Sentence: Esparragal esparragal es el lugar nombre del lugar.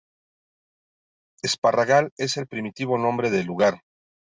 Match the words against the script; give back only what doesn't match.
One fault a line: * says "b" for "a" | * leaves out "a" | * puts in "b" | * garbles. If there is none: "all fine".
* leaves out "esparragal"
* says "primitivo" for "lugar"